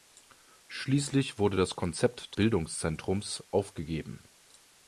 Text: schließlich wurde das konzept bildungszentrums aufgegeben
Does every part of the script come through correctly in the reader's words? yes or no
yes